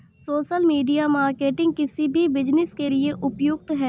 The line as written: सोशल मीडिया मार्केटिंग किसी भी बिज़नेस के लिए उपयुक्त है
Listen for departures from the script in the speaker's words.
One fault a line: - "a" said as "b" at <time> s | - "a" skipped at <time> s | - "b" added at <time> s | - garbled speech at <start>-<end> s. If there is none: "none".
none